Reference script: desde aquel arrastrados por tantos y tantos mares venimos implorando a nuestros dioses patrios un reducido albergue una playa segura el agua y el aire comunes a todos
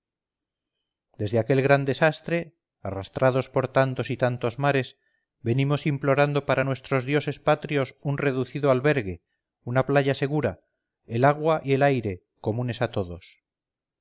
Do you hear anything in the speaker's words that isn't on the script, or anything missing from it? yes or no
yes